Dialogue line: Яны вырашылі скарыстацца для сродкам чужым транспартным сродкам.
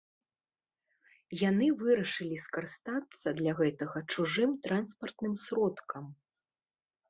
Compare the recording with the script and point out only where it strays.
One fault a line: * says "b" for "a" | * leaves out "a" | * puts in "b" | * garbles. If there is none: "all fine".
* says "гэтага" for "сродкам"